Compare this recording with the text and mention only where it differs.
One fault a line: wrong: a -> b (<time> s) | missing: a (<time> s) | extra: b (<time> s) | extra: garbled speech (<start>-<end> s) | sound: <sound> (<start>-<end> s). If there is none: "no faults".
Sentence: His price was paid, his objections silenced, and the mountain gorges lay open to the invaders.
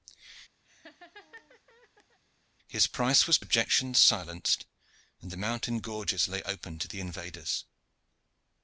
sound: laugh (0.6-2.2 s)
missing: paid his (3.4 s)